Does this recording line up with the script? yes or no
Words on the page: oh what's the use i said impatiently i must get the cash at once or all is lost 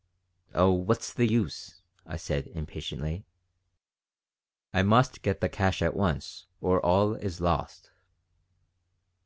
yes